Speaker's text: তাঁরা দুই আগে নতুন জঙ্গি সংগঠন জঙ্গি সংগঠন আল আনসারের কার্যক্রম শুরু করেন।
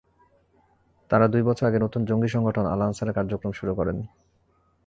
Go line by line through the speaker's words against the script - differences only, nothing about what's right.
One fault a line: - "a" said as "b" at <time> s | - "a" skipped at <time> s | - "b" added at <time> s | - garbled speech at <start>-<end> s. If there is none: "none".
- "বছর" added at 1.4 s
- "জঙ্গি সংগঠন" skipped at 2.6 s